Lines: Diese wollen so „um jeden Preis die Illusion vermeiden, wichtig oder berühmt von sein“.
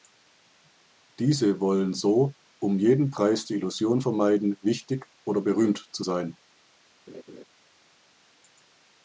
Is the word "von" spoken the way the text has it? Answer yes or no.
no